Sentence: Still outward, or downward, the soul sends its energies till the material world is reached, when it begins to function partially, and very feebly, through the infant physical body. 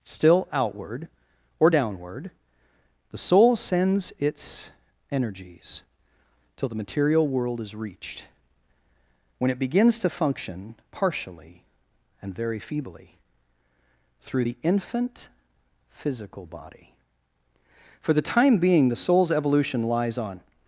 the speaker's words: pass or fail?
fail